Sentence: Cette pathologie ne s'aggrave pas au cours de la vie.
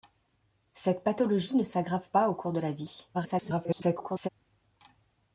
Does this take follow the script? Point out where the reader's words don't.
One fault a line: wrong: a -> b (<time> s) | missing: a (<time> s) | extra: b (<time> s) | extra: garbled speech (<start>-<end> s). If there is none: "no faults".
extra: garbled speech (3.1-4.3 s)